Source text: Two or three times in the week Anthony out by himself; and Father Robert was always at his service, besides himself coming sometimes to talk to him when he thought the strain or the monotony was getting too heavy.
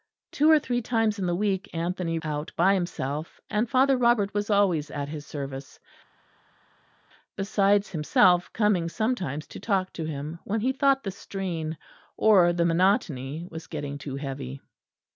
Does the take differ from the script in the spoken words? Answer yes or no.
no